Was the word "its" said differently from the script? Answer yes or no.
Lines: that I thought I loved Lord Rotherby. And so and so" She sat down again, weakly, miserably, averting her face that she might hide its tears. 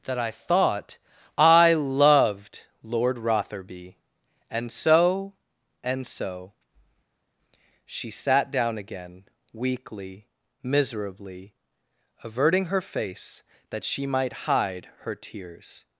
yes